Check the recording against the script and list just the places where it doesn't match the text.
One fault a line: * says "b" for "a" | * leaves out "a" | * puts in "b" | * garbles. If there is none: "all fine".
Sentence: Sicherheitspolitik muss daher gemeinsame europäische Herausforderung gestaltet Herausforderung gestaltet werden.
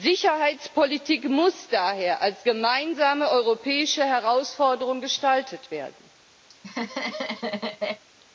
* puts in "als"
* leaves out "Herausforderung gestaltet"